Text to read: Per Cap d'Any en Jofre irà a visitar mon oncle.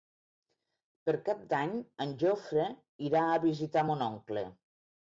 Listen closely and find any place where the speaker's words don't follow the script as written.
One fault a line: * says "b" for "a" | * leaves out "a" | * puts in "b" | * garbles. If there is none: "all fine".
all fine